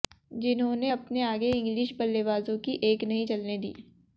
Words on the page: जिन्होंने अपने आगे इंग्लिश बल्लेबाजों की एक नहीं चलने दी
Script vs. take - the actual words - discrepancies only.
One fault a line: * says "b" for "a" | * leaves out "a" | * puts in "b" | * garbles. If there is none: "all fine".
all fine